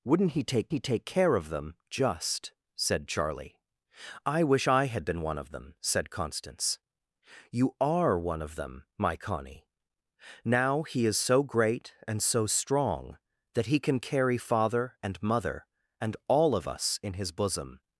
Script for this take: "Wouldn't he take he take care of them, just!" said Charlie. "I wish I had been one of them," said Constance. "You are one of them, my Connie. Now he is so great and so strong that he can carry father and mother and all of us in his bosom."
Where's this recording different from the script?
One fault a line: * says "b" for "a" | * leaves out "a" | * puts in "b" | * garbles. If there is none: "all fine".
all fine